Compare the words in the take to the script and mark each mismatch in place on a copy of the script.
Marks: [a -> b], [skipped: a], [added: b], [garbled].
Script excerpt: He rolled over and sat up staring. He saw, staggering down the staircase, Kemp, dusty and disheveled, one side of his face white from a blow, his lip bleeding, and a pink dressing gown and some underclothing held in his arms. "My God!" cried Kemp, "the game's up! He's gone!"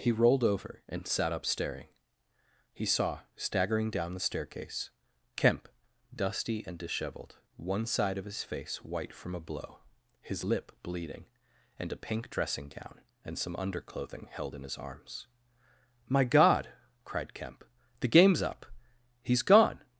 He rolled over and sat up staring. He saw, staggering down the staircase, Kemp, dusty and disheveled, one side of his face white from a blow, his lip bleeding, and a pink dressing gown and some underclothing held in his arms. "My God!" cried Kemp, "the game's up! He's gone!"